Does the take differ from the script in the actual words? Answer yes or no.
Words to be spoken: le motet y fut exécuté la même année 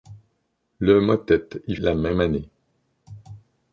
yes